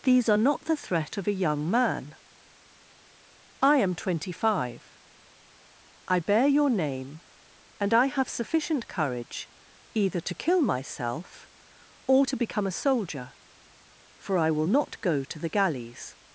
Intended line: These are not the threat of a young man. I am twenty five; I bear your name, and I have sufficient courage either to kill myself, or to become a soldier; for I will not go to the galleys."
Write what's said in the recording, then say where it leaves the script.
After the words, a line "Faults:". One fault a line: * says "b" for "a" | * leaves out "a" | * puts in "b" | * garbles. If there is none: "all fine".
These are not the threat of a young man. I am twenty five; I bear your name, and I have sufficient courage either to kill myself, or to become a soldier; for I will not go to the galleys."
Faults:
all fine